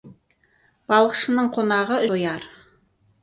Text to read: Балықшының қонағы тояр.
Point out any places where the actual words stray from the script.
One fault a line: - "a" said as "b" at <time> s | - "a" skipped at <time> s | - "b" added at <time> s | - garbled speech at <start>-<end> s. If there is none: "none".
none